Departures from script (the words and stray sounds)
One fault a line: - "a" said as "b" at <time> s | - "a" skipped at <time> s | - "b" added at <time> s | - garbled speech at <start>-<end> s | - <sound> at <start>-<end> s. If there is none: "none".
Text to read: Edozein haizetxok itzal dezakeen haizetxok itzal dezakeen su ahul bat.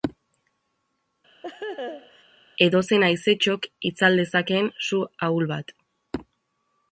- laugh at 1.4-2.2 s
- "haizetxok itzal dezakeen" skipped at 4.7 s